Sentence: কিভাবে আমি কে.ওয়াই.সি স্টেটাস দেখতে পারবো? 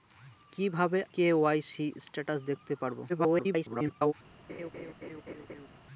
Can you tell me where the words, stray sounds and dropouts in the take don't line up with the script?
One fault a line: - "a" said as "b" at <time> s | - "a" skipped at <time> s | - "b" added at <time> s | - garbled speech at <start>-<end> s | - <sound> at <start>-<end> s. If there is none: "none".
- "আমি" skipped at 1.0 s
- garbled speech at 3.1-4.1 s
- laugh at 4.5-5.7 s